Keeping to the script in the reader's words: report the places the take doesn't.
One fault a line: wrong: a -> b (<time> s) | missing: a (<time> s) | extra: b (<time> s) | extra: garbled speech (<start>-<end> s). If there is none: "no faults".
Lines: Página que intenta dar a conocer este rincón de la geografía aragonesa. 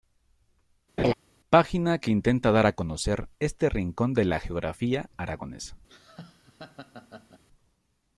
no faults